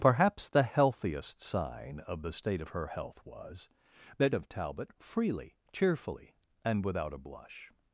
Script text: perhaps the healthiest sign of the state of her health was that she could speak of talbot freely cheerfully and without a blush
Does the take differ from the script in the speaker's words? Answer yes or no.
yes